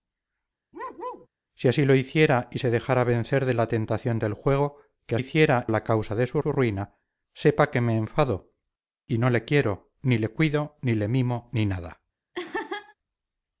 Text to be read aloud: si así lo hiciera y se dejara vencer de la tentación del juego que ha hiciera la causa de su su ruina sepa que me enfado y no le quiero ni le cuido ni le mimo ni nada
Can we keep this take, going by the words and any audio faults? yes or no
no